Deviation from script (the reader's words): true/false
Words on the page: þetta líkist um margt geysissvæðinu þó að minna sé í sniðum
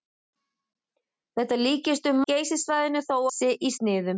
true